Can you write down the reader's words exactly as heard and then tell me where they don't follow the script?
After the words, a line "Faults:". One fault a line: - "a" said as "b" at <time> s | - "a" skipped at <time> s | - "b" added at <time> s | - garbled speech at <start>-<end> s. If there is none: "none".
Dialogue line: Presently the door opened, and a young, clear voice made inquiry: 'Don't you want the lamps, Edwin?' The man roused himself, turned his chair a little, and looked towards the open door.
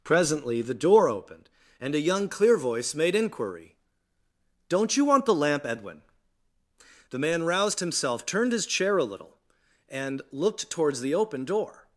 Presently the door opened, and a young, clear voice made inquiry: 'Don't you want the lamp, Edwin?' The man roused himself, turned his chair a little, and looked towards the open door.
Faults:
- "lamps" said as "lamp" at 5.3 s